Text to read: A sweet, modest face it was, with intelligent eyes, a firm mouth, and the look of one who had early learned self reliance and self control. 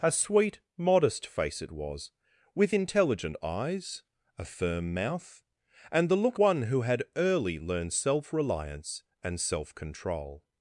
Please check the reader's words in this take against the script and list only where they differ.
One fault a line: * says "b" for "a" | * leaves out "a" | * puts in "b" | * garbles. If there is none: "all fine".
* leaves out "of"